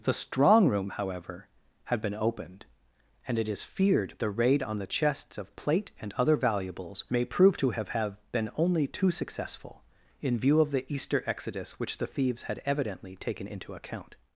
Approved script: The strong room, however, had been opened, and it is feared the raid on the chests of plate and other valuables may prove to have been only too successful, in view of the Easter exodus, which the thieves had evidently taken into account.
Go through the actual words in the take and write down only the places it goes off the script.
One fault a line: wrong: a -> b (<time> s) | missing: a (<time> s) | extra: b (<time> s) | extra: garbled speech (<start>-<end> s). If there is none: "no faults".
extra: have (7.9 s)